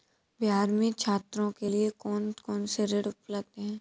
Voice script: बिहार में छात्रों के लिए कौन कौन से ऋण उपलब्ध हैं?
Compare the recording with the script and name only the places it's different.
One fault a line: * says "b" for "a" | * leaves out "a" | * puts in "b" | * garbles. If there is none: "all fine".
all fine